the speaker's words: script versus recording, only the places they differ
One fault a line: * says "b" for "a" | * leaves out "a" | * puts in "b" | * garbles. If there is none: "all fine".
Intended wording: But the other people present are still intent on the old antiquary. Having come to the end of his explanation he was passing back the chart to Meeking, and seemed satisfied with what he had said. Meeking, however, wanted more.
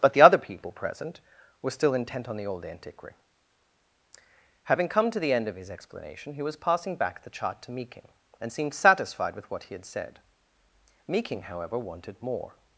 * says "were" for "are"